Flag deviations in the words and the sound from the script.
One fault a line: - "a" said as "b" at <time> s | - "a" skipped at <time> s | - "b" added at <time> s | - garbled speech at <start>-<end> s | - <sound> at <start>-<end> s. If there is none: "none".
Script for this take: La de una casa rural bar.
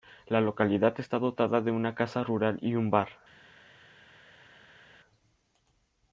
- "localidad está dotada" added at 0.4 s
- "y un" added at 2.6 s